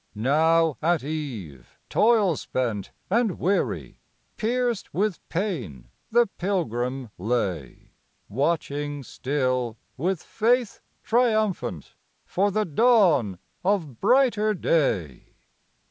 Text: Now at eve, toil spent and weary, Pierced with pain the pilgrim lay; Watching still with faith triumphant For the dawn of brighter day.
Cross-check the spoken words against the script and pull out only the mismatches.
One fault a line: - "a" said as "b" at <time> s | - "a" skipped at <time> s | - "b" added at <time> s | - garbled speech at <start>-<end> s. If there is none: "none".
none